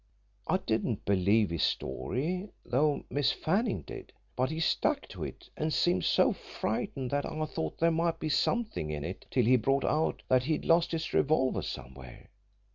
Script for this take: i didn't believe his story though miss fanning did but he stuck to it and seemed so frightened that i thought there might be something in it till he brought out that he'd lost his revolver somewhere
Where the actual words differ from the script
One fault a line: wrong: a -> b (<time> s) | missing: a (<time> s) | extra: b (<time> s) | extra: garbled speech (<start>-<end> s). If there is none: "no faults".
no faults